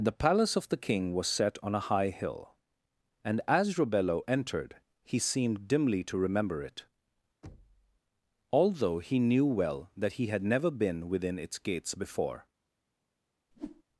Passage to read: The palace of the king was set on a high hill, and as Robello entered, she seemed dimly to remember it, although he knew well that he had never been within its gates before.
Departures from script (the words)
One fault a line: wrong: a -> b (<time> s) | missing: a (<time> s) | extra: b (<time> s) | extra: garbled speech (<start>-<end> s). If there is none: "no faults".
wrong: she -> he (5.0 s)